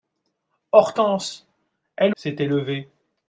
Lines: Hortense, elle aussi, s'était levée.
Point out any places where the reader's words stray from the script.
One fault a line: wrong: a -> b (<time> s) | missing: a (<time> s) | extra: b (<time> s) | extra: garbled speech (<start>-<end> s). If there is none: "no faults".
missing: aussi (2.1 s)